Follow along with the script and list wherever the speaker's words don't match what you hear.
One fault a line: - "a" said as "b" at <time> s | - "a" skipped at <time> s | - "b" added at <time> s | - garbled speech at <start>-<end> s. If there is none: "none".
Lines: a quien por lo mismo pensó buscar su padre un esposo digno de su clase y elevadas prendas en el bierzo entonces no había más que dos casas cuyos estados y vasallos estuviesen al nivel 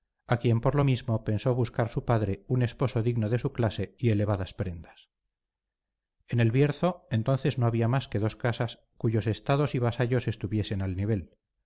none